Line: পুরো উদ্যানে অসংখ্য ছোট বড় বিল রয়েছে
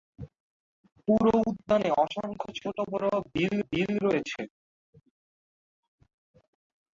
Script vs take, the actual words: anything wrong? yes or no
yes